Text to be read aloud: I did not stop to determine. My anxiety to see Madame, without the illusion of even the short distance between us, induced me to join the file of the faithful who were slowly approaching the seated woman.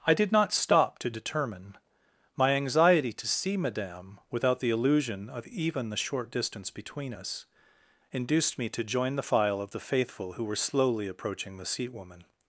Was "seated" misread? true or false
true